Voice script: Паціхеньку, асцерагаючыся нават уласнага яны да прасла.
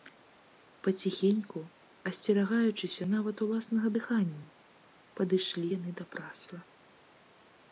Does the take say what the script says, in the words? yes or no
no